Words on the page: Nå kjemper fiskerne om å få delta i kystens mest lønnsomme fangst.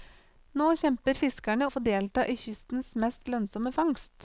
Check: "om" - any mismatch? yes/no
yes